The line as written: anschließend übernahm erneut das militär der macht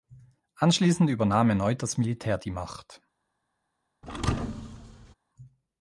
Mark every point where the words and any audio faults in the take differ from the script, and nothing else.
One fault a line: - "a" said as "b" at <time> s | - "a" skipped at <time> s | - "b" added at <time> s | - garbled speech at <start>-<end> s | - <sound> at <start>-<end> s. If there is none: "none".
- "der" said as "die" at 2.4 s
- thud at 4.0-5.1 s